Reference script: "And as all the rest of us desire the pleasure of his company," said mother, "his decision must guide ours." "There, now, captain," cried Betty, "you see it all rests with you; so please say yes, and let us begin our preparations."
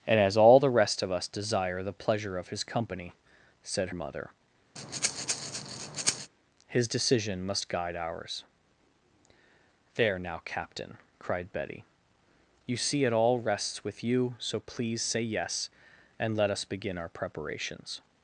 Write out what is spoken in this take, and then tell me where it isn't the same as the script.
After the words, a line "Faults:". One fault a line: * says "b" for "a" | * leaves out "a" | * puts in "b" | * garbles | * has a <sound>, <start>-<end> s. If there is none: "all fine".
"And as all the rest of us desire the pleasure of his company," said mother, "his decision must guide ours." "There, now, captain," cried Betty, "you see it all rests with you; so please say yes, and let us begin our preparations."
Faults:
* has a breath, 4.8-6.3 s